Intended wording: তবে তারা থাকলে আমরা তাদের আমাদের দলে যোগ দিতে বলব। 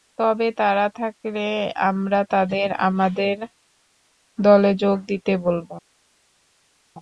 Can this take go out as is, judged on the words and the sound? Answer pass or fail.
pass